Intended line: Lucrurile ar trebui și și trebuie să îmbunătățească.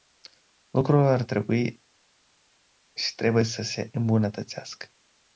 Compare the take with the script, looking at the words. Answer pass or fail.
fail